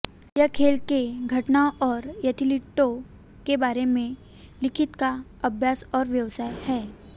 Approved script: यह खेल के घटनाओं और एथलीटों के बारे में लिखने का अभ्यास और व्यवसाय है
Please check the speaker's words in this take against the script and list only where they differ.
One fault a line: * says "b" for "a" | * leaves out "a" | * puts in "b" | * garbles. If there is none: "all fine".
all fine